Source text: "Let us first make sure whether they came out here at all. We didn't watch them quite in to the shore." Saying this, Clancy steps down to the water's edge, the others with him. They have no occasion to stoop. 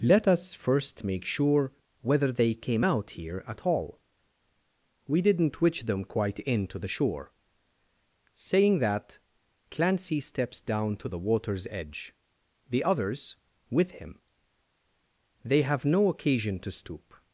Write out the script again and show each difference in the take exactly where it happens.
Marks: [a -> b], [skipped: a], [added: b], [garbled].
"Let us first make sure whether they came out here at all. We didn't [watch -> witch] them quite in to the shore." Saying [this, -> that] Clancy steps down to the water's edge, the others with him. They have no occasion to stoop.